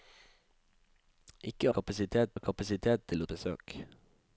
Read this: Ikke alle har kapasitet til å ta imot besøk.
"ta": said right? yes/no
no